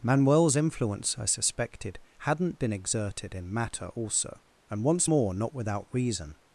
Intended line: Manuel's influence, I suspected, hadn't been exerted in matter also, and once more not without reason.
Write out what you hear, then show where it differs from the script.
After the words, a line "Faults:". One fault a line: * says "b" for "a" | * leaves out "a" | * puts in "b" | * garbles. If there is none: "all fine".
Manuel's influence, I suspected, hadn't been exerted in matter also, and once more not without reason.
Faults:
all fine